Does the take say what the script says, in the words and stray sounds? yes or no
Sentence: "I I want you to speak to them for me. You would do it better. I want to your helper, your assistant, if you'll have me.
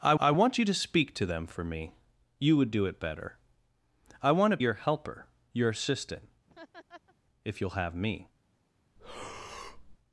no